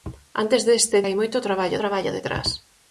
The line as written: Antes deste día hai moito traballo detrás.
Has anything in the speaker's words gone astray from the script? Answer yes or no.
yes